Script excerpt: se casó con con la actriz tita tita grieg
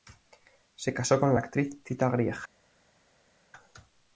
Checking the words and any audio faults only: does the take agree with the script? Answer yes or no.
no